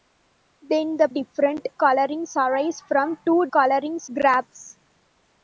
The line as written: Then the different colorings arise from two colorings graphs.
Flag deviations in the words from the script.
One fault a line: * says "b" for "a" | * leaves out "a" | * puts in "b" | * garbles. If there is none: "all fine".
all fine